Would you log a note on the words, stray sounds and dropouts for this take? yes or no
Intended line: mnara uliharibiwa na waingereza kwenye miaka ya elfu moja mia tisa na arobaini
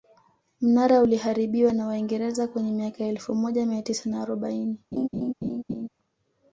yes